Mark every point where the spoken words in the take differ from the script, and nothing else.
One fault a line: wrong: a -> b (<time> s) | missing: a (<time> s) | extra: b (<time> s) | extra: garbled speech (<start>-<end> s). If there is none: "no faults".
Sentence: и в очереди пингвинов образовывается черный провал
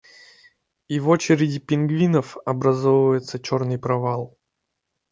no faults